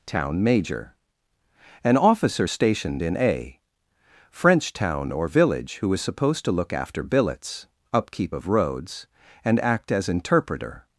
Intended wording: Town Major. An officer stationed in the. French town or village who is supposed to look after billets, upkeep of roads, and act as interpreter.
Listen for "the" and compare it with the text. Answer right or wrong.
wrong